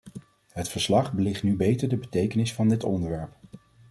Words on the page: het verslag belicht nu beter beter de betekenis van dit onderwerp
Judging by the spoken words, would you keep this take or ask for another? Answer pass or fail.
fail